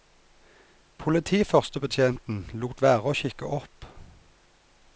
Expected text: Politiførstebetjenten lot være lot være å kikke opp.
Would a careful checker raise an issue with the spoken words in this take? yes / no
yes